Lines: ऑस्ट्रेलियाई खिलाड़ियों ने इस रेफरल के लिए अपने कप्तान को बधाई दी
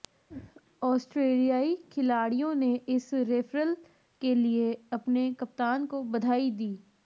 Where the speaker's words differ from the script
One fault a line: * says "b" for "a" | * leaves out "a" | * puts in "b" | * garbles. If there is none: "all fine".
all fine